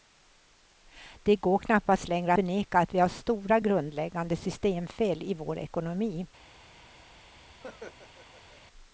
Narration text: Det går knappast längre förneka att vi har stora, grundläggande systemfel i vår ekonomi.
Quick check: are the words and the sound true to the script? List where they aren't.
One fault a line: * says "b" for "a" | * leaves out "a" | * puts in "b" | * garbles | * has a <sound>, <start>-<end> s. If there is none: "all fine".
* has a laugh, 7.6-8.6 s